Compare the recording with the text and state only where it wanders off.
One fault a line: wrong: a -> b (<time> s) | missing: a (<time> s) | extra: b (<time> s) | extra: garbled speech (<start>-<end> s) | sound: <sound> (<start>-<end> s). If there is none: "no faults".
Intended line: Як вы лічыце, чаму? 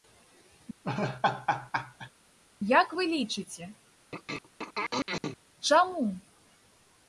sound: laugh (0.8-2.1 s)
sound: throat clearing (4.1-5.4 s)